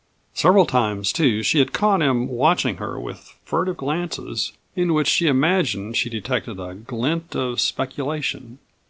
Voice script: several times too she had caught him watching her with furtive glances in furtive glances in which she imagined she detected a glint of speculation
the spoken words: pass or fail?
fail